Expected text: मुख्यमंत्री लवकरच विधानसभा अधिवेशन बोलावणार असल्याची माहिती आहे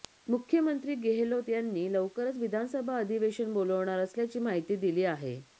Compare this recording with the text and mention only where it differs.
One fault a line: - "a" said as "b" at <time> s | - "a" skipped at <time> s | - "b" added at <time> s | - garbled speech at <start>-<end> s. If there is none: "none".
- "गेहलोत यांनी" added at 1.0 s
- "दिली" added at 4.8 s